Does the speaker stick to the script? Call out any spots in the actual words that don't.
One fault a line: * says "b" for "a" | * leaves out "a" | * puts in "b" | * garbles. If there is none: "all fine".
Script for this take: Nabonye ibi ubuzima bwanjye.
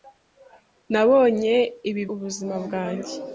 all fine